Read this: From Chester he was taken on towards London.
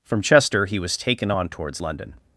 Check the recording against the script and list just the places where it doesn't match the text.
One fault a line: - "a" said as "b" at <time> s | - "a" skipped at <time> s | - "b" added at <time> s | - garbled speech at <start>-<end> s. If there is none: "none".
none